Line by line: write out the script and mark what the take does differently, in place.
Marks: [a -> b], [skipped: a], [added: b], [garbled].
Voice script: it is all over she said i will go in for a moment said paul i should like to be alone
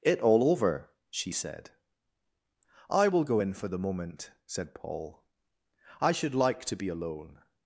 it [skipped: is] all over she said i will go in for [a -> the] moment said paul i should like to be alone